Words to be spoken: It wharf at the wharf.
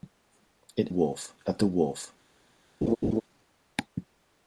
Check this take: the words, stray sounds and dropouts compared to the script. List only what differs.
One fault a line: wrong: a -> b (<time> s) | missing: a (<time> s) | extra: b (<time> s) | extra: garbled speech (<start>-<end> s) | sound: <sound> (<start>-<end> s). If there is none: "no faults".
sound: laugh (2.8-3.2 s)